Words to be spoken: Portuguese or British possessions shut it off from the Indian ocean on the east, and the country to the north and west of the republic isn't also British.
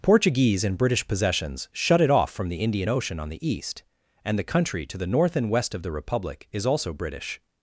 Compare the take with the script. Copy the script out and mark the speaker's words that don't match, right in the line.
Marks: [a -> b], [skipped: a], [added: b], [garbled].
Portuguese [or -> and] British possessions shut it off from the Indian ocean on the east, and the country to the north and west of the republic [isn't -> is] also British.